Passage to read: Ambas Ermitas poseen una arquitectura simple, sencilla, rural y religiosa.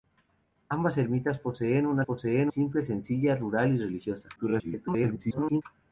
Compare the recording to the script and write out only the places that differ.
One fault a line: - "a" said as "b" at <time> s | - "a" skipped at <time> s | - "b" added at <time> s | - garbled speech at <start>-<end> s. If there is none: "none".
- "arquitectura" said as "poseen" at 2.0 s
- garbled speech at 4.4-5.6 s